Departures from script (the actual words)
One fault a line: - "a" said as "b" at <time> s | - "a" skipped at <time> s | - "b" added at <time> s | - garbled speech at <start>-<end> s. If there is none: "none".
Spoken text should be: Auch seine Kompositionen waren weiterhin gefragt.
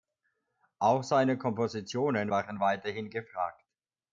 none